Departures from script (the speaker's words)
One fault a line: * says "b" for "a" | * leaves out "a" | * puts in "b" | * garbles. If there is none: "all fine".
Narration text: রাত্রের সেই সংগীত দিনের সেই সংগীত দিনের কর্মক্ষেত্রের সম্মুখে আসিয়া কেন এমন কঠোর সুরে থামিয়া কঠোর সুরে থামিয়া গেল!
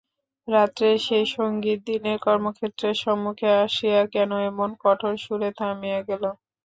* leaves out "সেই সংগীত দিনের"
* leaves out "কঠোর সুরে থামিয়া"